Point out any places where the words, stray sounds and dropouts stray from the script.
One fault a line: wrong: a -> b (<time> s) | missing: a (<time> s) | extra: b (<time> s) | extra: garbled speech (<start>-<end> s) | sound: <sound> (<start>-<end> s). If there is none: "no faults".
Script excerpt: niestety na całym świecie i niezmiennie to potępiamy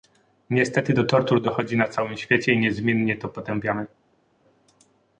extra: do tortur dochodzi (0.9 s)